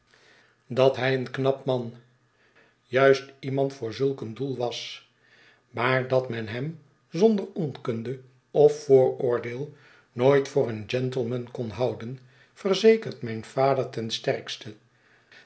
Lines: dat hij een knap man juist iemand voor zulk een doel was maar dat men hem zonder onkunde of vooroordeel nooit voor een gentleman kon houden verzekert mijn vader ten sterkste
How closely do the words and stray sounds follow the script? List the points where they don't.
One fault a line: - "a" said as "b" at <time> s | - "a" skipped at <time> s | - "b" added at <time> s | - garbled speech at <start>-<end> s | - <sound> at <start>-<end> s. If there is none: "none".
none